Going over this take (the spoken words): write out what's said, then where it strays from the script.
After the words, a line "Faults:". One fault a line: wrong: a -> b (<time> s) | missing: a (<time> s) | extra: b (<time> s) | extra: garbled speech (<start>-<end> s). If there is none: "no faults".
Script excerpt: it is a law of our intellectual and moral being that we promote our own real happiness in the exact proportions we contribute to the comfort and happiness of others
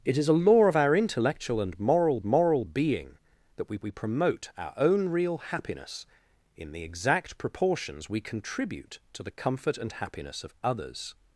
it is a law of our intellectual and moral moral being that we we promote our own real happiness in the exact proportions we contribute to the comfort and happiness of others
Faults:
extra: moral (2.2 s)
extra: we (3.8 s)